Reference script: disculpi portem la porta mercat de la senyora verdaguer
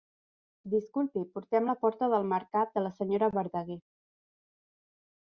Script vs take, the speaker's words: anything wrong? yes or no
yes